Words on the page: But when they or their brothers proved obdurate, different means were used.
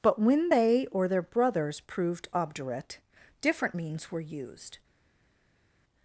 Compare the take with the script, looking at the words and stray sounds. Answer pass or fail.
pass